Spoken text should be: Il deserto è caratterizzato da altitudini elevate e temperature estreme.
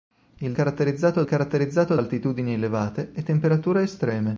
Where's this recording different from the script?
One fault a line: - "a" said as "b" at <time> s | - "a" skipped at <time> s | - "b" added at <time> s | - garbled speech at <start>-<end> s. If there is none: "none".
- "deserto" said as "caratterizzato" at 0.5 s
- "da" skipped at 2.0 s